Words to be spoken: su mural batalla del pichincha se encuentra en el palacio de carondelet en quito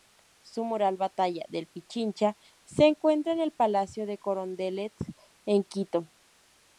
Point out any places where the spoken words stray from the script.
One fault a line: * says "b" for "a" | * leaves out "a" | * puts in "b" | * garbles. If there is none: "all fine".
all fine